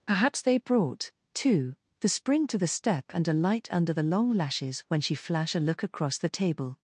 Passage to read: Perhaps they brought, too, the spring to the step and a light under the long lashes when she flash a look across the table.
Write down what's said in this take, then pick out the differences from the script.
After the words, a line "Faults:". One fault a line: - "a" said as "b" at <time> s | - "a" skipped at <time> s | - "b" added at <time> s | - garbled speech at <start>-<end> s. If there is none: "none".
Perhaps they brought, too, the spring to the step and a light under the long lashes when she flash a look across the table.
Faults:
none